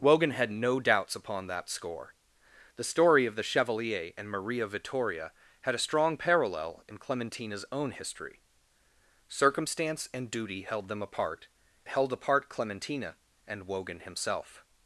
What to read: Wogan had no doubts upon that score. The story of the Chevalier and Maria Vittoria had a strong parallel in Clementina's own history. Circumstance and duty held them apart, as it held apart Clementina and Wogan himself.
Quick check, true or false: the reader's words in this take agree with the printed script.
false